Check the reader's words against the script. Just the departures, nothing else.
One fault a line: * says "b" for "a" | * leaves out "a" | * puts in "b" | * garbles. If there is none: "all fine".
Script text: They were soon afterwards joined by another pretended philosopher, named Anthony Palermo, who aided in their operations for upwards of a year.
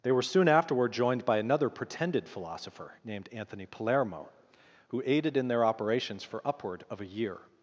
* says "afterward" for "afterwards"
* says "upward" for "upwards"